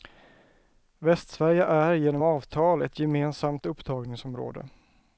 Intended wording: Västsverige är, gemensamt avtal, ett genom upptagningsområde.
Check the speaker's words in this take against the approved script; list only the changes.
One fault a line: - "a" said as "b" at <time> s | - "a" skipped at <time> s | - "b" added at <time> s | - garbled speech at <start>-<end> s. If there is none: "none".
- "gemensamt" said as "genom" at 1.9 s
- "genom" said as "gemensamt" at 3.0 s